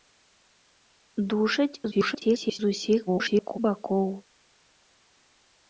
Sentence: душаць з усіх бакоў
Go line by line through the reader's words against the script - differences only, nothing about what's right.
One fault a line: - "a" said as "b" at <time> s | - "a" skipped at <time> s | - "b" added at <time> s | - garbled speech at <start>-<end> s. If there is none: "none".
- garbled speech at 1.9-2.6 s
- garbled speech at 3.1-3.6 s